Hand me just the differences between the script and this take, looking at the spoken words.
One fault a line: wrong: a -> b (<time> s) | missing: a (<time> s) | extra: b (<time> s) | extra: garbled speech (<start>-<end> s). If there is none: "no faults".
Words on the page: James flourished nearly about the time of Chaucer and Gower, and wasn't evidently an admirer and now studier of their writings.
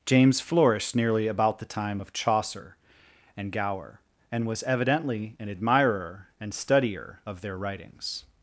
wrong: wasn't -> was (4.5 s)
missing: now (6.5 s)